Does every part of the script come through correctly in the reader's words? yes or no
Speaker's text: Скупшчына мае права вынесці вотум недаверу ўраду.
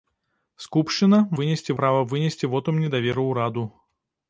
no